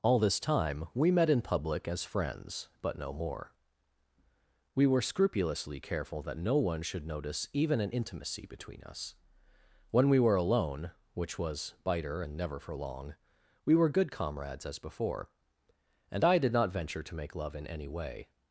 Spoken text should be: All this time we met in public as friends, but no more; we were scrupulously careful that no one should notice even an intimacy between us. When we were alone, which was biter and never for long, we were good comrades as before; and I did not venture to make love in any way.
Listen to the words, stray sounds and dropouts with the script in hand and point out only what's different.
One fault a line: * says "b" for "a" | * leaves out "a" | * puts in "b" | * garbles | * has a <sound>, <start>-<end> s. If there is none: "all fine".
all fine